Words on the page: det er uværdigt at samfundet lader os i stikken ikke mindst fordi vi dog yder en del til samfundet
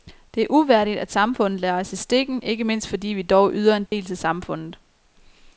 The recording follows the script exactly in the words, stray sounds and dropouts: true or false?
false